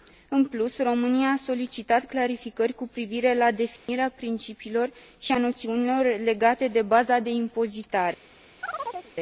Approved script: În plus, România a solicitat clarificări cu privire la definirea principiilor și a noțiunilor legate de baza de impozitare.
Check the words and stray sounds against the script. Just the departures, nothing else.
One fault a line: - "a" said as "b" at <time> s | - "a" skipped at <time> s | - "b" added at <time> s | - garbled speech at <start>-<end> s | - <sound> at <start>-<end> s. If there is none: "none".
- dropout at 3.8-3.9 s
- chirp at 8.6-9.1 s